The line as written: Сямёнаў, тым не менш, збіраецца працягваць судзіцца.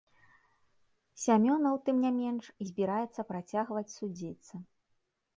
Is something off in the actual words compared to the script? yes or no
no